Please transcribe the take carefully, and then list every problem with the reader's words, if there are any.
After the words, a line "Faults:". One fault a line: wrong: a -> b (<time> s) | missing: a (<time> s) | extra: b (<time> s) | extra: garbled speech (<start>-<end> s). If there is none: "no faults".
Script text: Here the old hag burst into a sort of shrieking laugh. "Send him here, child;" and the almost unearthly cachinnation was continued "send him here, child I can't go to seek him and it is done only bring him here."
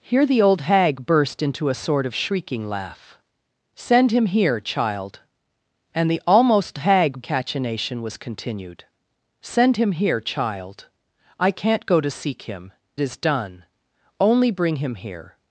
Here the old hag burst into a sort of shrieking laugh. "Send him here, child;" and the almost hag cachinnation was continued "send him here, child I can't go to seek him is done only bring him here."
Faults:
wrong: unearthly -> hag (6.8 s)
missing: and it (12.7 s)